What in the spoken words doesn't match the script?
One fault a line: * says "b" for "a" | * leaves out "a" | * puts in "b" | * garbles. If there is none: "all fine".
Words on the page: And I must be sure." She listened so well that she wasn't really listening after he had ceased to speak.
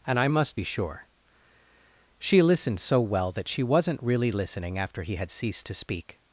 all fine